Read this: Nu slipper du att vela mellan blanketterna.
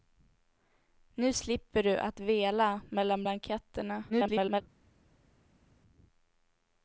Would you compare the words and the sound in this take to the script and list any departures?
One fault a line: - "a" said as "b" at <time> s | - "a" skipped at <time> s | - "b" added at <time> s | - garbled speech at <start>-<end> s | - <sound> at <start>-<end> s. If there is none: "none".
- garbled speech at 4.1-4.6 s